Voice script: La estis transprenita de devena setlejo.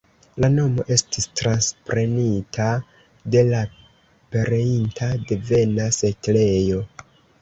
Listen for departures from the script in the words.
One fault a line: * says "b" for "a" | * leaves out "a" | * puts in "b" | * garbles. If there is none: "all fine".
* puts in "nomo"
* puts in "la pereinta"